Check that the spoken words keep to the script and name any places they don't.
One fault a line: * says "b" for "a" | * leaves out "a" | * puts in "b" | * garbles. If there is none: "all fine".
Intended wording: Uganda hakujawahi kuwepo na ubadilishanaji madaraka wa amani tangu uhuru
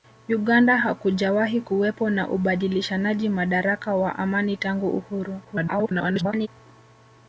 * garbles